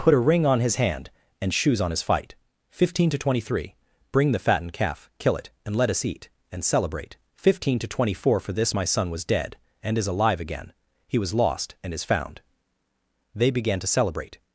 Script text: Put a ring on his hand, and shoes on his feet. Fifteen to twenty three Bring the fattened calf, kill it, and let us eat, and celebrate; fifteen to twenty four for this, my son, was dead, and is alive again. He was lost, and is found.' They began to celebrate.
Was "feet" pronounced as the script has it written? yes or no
no